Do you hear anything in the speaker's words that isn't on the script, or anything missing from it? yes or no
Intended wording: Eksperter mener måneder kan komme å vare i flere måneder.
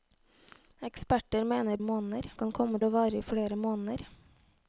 no